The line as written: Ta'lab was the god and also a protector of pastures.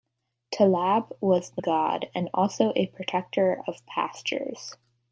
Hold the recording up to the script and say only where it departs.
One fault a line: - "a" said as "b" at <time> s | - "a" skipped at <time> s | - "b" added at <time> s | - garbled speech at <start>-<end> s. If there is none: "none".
none